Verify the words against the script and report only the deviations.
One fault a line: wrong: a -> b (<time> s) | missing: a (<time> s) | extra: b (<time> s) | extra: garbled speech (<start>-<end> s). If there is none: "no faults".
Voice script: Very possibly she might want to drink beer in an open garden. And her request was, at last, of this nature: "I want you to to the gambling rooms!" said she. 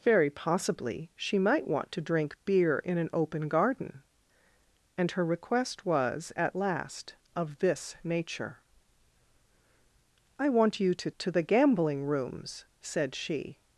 no faults